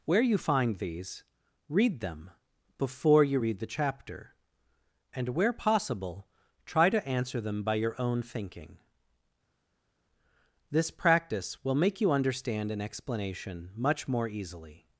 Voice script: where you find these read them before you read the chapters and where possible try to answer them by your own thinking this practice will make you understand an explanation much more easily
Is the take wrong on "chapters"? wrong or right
wrong